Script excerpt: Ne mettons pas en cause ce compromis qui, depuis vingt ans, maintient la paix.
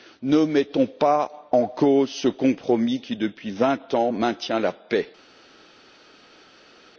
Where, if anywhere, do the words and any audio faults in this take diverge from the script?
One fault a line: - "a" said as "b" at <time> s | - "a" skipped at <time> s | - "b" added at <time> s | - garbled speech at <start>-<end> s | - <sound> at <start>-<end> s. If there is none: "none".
none